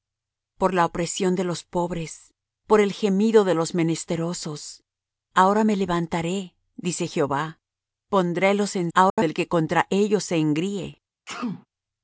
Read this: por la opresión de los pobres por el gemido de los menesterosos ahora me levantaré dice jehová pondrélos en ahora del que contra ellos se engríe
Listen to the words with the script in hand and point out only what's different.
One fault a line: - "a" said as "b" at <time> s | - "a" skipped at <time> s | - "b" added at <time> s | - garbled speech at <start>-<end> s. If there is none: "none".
none